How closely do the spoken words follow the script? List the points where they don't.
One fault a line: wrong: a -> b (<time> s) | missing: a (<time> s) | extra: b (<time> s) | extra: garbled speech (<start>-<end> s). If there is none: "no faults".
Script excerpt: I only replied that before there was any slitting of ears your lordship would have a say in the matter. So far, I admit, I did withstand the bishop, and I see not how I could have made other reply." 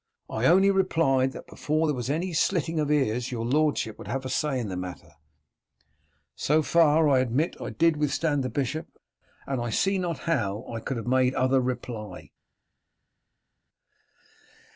no faults